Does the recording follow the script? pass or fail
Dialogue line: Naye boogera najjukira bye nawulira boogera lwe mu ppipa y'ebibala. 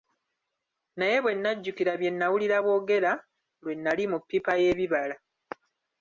fail